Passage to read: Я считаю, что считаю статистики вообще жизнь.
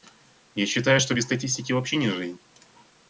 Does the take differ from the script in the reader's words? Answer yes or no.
yes